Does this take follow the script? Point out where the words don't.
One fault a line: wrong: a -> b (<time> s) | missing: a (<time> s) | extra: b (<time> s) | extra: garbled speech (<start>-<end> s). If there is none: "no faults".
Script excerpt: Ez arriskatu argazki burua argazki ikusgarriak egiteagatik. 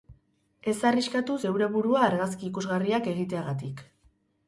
wrong: argazki -> zeure (1.4 s)